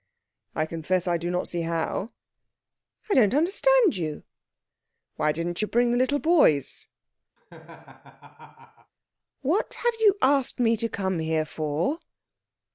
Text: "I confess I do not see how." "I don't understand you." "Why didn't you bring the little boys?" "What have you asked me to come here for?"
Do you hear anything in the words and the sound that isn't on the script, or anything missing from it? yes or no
yes